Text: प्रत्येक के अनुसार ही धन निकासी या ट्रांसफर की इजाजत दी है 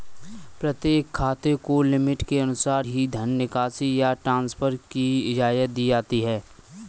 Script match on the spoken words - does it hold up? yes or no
no